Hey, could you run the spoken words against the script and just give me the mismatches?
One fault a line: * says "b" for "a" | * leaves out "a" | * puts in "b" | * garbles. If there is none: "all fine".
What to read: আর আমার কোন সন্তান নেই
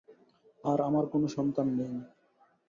all fine